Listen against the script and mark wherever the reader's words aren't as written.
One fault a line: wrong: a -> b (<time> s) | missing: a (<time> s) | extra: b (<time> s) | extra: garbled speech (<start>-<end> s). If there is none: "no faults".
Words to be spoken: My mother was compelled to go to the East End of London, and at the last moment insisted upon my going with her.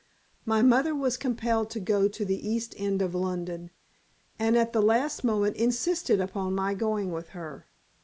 no faults